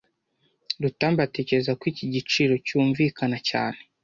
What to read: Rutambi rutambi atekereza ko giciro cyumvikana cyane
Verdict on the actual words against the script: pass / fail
fail